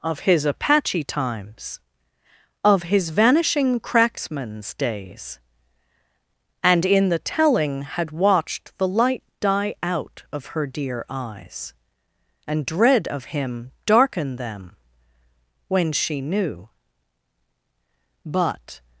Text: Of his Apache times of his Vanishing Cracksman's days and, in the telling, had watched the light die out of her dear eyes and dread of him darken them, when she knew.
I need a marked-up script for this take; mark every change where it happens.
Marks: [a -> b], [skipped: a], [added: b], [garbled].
Of his Apache times of his Vanishing Cracksman's days and, in the telling, had watched the light die out of her dear eyes and dread of him darken them, when she knew. [added: But]